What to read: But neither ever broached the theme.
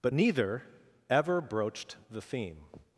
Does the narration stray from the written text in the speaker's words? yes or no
no